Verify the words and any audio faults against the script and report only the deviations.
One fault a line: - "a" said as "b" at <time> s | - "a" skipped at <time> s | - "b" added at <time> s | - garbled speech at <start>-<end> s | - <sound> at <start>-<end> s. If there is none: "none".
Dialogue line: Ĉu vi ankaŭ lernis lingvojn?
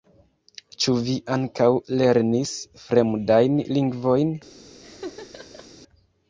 - "fremdajn" added at 2.9 s
- laugh at 4.8-5.7 s